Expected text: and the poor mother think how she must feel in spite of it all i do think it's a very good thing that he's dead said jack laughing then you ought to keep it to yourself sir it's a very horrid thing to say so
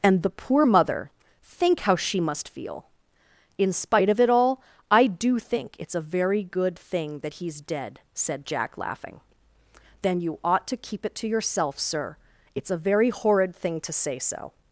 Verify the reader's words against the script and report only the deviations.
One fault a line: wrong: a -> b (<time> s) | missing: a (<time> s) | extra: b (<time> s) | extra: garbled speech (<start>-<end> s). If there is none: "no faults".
no faults